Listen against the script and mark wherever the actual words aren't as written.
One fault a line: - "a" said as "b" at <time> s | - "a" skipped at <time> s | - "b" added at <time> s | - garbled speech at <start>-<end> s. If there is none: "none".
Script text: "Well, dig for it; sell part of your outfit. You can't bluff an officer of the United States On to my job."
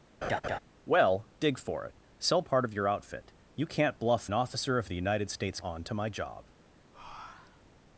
none